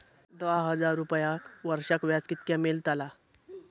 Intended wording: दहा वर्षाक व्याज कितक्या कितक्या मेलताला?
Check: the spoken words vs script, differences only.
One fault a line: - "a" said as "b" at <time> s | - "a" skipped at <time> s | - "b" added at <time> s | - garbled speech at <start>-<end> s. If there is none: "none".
- "हजार रुपयांक" added at 0.7 s
- "कितक्या" skipped at 2.6 s